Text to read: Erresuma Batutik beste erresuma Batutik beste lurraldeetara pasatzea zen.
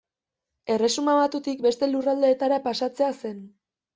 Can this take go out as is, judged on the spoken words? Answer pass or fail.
fail